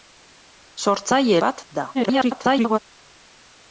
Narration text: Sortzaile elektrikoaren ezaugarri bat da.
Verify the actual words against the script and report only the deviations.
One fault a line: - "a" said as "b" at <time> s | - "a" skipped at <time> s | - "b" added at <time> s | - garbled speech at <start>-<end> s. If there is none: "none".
- "elektrikoaren ezaugarri" skipped at 1.4 s
- garbled speech at 1.9-2.8 s